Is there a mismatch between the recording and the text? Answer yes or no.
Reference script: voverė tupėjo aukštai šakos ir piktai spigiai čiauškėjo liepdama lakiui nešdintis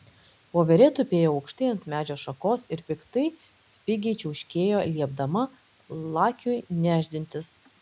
yes